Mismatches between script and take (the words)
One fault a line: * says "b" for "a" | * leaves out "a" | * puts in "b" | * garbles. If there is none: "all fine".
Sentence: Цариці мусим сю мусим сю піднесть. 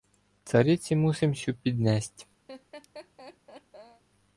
* leaves out "мусим сю"